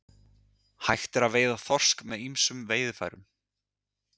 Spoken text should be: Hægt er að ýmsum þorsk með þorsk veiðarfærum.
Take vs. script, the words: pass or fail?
fail